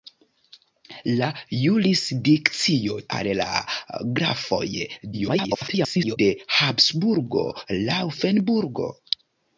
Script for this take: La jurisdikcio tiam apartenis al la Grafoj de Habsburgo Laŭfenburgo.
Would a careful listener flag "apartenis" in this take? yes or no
yes